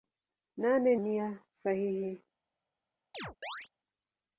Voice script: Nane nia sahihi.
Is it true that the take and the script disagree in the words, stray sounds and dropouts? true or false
true